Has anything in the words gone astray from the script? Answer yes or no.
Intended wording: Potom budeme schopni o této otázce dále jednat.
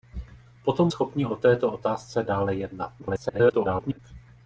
yes